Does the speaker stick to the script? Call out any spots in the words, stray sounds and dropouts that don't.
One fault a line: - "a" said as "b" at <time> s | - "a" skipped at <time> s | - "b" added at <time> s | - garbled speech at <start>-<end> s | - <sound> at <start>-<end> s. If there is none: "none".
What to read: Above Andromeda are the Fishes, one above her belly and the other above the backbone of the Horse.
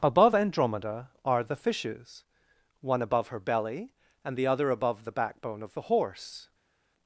none